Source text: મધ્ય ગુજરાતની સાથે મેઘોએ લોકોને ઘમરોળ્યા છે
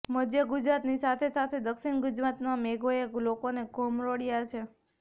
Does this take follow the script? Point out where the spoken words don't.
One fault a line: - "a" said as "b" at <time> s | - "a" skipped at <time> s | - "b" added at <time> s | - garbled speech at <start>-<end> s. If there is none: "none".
- "સાથે દક્ષિણ ગુજરાતમાં" added at 1.3 s